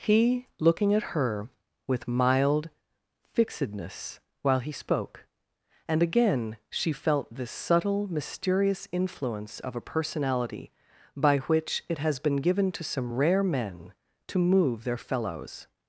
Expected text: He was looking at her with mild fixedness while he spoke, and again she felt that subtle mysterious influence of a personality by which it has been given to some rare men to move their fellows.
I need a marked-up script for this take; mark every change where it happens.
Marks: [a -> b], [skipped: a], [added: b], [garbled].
He [skipped: was] looking at her with mild fixedness while he spoke, and again she felt [that -> this] subtle mysterious influence of a personality by which it has been given to some rare men to move their fellows.